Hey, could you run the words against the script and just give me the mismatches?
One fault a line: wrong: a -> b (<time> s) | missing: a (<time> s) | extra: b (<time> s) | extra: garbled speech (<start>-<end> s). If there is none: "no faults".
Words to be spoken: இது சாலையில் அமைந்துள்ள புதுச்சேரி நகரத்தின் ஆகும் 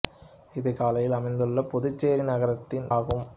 no faults